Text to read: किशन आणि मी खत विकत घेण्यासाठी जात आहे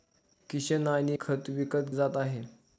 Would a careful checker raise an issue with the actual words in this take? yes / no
yes